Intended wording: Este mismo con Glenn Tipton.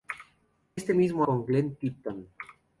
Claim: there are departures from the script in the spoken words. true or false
false